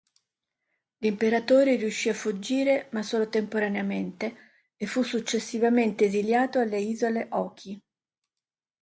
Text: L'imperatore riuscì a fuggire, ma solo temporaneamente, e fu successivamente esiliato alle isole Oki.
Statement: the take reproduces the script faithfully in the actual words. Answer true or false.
true